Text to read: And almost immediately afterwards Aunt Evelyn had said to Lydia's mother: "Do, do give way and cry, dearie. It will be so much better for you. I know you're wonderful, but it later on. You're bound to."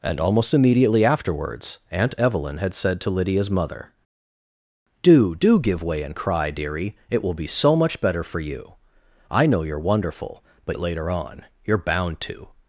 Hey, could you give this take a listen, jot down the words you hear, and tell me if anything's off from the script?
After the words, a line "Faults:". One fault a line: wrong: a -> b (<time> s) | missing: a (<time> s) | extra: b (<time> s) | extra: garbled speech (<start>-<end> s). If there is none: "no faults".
And almost immediately afterwards Aunt Evelyn had said to Lydia's mother: "Do, do give way and cry, dearie. It will be so much better for you. I know you're wonderful, but it later on. You're bound to."
Faults:
no faults